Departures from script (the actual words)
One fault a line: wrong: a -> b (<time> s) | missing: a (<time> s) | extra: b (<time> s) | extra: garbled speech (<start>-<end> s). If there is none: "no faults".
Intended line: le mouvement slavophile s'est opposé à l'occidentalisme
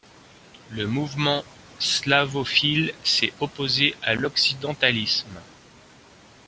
no faults